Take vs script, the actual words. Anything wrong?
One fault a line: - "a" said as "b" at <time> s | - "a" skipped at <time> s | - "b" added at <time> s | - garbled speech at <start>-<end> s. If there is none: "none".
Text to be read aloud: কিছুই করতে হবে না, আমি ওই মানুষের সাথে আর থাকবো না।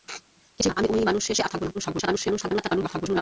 - "করতে হবে" skipped at 0.7 s
- "সাথে" skipped at 1.4 s
- garbled speech at 1.7-3.2 s